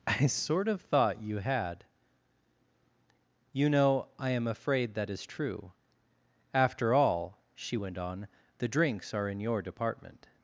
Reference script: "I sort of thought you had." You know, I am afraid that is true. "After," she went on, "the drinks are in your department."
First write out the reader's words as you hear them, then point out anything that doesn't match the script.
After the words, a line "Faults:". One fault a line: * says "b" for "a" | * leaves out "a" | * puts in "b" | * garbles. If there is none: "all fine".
"I sort of thought you had." You know, I am afraid that is true. "After all," she went on, "the drinks are in your department."
Faults:
* puts in "all"